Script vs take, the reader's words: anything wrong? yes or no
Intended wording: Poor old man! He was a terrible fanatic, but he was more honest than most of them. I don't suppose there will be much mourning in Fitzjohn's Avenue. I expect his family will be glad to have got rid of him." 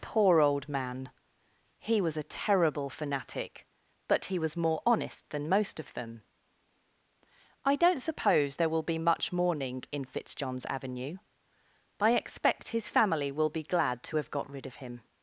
no